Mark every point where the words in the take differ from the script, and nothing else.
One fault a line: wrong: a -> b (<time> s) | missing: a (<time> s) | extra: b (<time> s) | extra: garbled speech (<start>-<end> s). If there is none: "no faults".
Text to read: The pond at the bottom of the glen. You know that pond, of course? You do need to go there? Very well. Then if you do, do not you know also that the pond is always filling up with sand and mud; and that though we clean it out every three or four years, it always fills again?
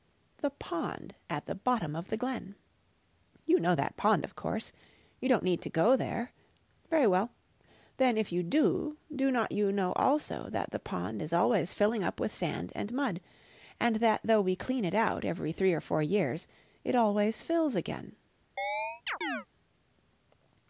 wrong: do -> don't (5.3 s)